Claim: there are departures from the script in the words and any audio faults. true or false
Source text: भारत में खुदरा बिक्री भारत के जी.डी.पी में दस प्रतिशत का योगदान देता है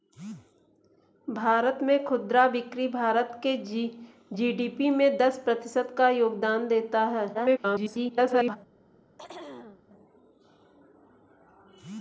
true